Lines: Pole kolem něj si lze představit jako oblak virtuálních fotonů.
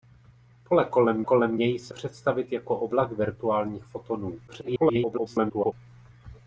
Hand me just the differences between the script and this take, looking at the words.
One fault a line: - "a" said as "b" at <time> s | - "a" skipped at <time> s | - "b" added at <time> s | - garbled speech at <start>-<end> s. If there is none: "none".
- "kolem" added at 1.2 s
- "lze" skipped at 1.9 s
- garbled speech at 4.5-5.7 s